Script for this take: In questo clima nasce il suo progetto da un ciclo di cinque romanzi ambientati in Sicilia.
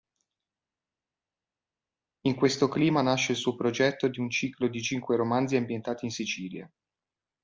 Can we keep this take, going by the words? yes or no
no